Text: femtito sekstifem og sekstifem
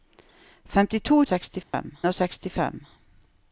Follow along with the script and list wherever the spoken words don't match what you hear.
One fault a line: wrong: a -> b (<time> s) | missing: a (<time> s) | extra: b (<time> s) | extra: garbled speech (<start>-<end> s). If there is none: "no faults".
no faults